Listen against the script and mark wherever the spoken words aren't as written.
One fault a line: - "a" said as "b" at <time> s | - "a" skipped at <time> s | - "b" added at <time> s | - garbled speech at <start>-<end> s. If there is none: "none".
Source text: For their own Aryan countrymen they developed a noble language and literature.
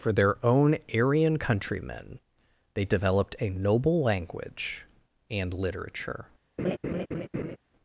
none